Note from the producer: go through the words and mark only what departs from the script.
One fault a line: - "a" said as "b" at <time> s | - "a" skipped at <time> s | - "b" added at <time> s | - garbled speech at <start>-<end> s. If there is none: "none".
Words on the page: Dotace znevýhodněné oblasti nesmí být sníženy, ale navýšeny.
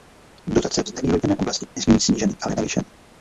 none